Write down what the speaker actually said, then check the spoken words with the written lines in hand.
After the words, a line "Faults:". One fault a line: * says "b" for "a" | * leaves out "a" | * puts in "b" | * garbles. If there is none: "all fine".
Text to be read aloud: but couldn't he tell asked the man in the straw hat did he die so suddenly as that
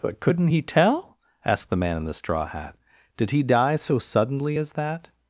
but couldn't he tell asked the man in the straw hat did he die so suddenly as that
Faults:
all fine